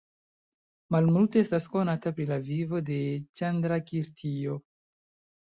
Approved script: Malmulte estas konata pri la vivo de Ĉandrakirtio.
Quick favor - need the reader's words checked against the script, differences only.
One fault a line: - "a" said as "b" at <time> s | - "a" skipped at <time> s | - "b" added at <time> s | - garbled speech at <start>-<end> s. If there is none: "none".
none